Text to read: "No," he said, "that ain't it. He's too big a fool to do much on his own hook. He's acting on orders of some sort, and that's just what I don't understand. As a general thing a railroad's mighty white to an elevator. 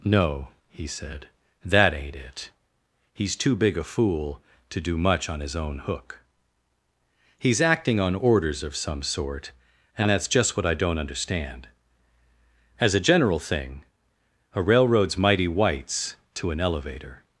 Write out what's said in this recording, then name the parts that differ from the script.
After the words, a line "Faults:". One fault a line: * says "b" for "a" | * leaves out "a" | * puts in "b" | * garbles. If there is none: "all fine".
"No," he said, "that ain't it. He's too big a fool to do much on his own hook. He's acting on orders of some sort, and that's just what I don't understand. As a general thing a railroad's mighty whites to an elevator.
Faults:
* says "whites" for "white"